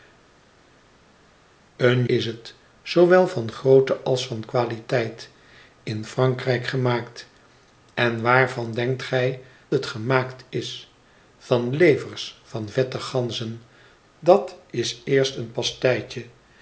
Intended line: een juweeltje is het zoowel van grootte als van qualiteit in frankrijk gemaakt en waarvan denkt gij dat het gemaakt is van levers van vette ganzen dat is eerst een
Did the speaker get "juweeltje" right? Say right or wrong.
wrong